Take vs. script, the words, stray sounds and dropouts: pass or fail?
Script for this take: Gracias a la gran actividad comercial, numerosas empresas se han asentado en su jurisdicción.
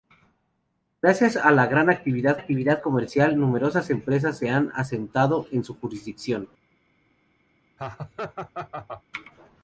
fail